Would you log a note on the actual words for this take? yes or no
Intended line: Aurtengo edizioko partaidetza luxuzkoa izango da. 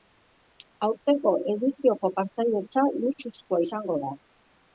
no